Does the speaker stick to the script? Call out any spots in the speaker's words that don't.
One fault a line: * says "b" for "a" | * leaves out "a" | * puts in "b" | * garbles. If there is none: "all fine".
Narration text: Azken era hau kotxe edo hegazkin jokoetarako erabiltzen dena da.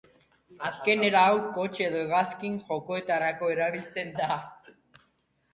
* leaves out "dena"